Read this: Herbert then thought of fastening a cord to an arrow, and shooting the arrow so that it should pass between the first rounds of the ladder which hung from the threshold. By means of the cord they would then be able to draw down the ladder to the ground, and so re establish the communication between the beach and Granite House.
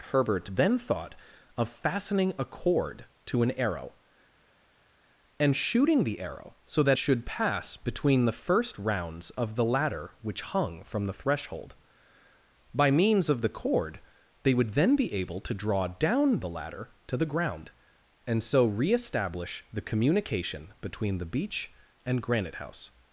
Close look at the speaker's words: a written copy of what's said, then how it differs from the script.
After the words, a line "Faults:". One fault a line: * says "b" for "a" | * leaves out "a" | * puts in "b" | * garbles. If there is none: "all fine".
Herbert then thought of fastening a cord to an arrow, and shooting the arrow so that should pass between the first rounds of the ladder which hung from the threshold. By means of the cord they would then be able to draw down the ladder to the ground, and so re establish the communication between the beach and Granite House.
Faults:
* leaves out "it"